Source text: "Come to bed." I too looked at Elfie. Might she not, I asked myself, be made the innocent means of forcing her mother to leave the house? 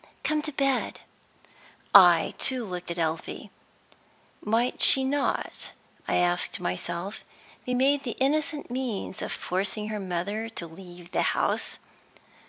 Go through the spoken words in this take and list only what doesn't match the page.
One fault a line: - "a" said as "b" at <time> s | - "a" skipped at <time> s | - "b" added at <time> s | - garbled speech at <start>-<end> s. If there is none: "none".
none